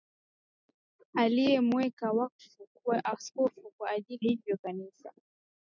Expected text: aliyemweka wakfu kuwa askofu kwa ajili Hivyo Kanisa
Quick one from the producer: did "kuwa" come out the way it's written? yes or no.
yes